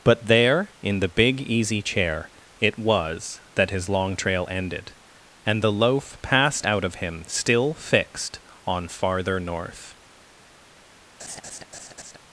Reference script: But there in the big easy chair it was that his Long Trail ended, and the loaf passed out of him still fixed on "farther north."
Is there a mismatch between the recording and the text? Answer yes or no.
no